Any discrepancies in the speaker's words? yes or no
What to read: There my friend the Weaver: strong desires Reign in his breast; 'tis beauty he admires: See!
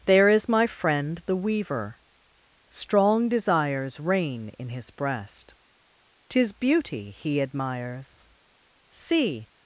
yes